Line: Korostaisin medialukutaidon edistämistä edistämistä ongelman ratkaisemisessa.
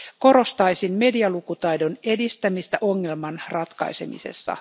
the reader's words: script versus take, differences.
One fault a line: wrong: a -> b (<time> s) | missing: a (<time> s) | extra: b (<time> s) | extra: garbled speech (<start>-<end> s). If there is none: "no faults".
missing: edistämistä (2.8 s)